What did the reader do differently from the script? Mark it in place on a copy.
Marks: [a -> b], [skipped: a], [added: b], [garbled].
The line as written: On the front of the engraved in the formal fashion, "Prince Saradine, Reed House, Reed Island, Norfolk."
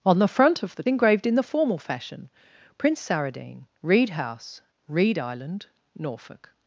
On the front of the engraved in the formal fashion, "Prince Saradine, Reed House, Reed Island, Norfolk."